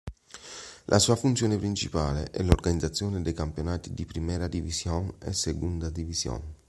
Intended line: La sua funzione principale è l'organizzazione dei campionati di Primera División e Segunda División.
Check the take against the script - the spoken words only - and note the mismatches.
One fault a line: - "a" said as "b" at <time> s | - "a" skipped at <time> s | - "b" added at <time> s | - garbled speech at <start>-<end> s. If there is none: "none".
none